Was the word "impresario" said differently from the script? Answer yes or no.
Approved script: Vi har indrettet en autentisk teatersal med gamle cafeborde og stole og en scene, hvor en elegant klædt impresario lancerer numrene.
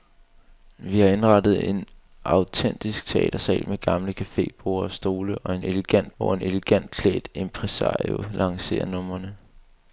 no